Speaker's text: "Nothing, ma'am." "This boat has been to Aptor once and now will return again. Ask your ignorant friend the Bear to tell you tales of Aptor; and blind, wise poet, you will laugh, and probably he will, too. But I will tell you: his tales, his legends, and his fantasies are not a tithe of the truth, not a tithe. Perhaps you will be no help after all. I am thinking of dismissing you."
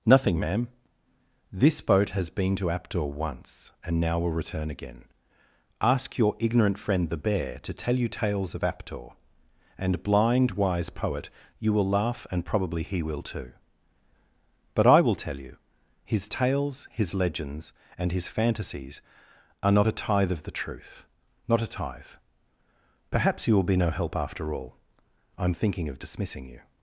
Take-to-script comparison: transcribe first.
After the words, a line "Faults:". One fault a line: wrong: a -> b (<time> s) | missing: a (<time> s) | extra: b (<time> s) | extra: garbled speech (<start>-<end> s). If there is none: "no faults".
"Nothing, ma'am." "This boat has been to Aptor once and now will return again. Ask your ignorant friend the Bear to tell you tales of Aptor; and blind, wise poet, you will laugh, and probably he will, too. But I will tell you: his tales, his legends, and his fantasies are not a tithe of the truth, not a tithe. Perhaps you will be no help after all. I am thinking of dismissing you."
Faults:
no faults